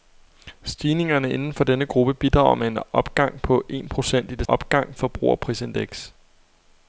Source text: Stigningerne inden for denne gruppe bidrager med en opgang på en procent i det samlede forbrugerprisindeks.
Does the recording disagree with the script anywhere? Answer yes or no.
yes